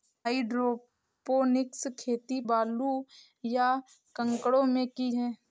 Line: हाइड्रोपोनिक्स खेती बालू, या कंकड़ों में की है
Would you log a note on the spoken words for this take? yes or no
no